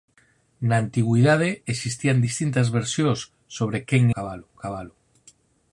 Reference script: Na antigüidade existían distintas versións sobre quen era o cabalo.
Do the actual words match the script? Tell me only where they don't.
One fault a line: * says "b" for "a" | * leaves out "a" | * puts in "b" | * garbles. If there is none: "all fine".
* says "cabalo" for "era"